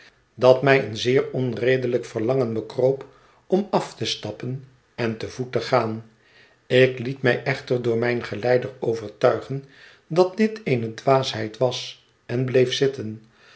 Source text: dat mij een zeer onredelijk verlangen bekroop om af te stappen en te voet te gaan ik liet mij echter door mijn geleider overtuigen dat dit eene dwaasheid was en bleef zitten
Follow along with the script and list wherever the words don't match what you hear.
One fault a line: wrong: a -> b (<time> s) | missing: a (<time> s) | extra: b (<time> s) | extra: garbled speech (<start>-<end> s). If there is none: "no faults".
no faults